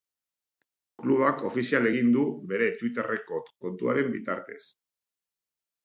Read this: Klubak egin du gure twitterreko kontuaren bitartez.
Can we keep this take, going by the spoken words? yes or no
no